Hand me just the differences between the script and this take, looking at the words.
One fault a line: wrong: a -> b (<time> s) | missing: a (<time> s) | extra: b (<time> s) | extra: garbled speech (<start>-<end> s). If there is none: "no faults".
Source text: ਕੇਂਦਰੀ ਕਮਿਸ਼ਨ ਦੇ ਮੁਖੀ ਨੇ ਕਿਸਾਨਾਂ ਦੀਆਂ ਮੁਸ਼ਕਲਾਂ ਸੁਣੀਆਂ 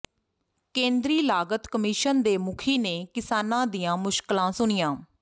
extra: ਲਾਗਤ (1.2 s)